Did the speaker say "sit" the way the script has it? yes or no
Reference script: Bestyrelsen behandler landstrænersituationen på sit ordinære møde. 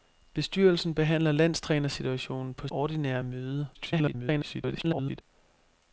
no